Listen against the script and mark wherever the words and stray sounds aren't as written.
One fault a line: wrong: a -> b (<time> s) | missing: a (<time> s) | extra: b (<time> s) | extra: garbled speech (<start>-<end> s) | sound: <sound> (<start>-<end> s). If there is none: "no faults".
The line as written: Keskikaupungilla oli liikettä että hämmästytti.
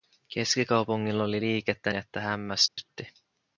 sound: dropout (2.7-2.8 s)